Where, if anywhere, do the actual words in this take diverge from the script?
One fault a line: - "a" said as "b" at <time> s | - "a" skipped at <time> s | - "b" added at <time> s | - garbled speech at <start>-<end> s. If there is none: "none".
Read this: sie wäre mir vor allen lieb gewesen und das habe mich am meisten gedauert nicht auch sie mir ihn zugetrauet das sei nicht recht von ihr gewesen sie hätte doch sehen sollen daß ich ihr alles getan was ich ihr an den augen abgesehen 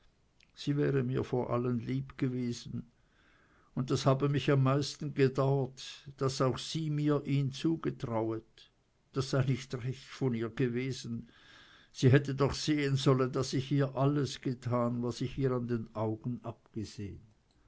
- "nicht" said as "daß" at 6.2 s